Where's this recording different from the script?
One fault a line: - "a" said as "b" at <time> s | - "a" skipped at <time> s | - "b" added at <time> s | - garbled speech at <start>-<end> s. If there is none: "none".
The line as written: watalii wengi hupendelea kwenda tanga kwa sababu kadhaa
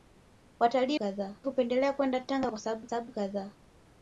- "wengi" said as "kadhaa" at 0.9 s
- "sababu" added at 2.9 s